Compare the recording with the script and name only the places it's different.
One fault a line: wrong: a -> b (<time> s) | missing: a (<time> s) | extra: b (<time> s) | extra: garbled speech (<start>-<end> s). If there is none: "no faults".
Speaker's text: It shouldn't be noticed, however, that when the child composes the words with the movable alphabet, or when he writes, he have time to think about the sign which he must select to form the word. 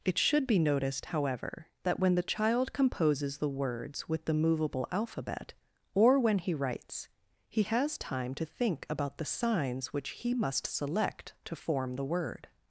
wrong: shouldn't -> should (0.2 s)
wrong: have -> has (7.6 s)
wrong: sign -> signs (9.2 s)